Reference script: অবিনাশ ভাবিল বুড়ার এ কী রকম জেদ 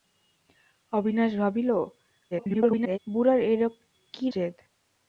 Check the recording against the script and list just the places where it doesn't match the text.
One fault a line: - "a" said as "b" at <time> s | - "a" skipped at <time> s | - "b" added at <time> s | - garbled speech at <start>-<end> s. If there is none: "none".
- garbled speech at 2.3-3.0 s
- "রকম" skipped at 4.3 s